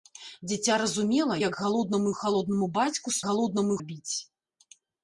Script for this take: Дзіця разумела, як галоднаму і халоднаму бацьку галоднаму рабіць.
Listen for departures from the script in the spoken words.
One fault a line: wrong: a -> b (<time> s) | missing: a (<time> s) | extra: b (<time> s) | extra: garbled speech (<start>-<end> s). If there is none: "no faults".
no faults